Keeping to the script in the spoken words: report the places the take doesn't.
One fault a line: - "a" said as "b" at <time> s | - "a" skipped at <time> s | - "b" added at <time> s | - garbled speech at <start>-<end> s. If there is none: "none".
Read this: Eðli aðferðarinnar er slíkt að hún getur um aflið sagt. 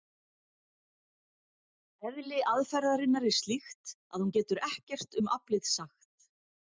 - "ekkert" added at 4.7 s